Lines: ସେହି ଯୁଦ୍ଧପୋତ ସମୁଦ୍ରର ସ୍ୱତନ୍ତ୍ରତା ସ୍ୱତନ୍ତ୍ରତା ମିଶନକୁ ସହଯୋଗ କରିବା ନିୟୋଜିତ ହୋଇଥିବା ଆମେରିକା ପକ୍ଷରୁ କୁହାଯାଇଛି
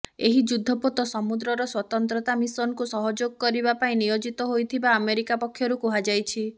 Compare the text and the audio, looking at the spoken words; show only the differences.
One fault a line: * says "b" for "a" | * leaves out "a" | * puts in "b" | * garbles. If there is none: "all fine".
* says "ଏହି" for "ସେହି"
* leaves out "ସ୍ୱତନ୍ତ୍ରତା"
* puts in "ପାଇଁ"